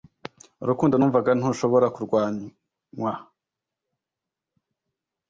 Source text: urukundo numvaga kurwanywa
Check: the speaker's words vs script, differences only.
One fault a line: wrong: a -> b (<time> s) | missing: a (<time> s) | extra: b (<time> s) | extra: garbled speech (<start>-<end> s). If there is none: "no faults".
extra: ntushobora (1.4 s)